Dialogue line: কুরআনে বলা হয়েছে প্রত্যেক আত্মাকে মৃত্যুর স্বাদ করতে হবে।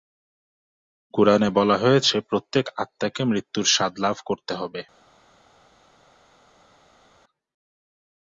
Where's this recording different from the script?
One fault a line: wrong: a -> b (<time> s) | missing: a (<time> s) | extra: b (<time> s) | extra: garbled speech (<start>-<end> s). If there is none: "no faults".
extra: লাভ (4.0 s)